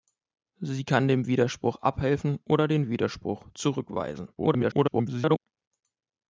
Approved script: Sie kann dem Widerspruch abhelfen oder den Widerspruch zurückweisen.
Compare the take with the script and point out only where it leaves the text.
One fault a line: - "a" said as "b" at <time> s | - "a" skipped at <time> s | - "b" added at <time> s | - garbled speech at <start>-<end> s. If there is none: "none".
- garbled speech at 4.4-5.4 s